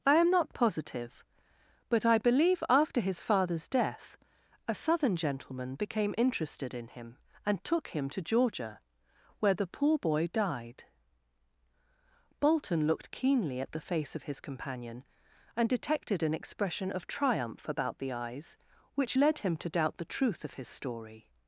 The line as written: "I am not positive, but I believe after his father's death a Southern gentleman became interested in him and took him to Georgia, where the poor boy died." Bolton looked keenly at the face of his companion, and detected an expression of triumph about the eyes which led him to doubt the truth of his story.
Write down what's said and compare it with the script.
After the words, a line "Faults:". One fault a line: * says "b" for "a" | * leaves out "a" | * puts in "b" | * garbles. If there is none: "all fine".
"I am not positive, but I believe after his father's death a Southern gentleman became interested in him and took him to Georgia, where the poor boy died." Bolton looked keenly at the face of his companion, and detected an expression of triumph about the eyes which led him to doubt the truth of his story.
Faults:
all fine